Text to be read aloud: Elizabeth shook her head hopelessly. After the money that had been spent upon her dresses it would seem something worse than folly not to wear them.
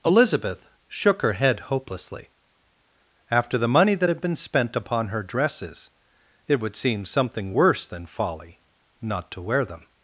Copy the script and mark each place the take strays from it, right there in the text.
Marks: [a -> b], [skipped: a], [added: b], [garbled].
Elizabeth shook her head hopelessly. After the money that had been spent upon her dresses it would seem something worse than folly not to wear them.